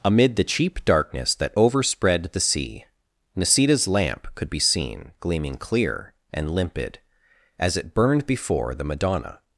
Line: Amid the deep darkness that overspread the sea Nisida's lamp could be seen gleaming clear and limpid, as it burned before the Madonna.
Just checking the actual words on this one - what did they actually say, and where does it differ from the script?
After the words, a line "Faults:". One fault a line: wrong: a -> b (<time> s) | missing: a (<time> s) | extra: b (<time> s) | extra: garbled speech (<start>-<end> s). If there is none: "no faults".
Amid the cheap darkness that overspread the sea Nisida's lamp could be seen gleaming clear and limpid, as it burned before the Madonna.
Faults:
wrong: deep -> cheap (0.4 s)